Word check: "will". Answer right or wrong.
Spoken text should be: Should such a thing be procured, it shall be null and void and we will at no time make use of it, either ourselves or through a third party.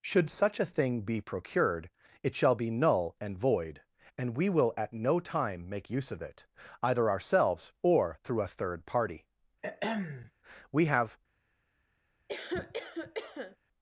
right